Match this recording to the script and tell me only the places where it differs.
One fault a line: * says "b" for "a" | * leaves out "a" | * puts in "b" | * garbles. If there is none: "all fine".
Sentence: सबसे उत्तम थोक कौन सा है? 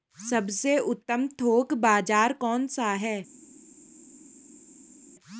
* puts in "बाज़ार"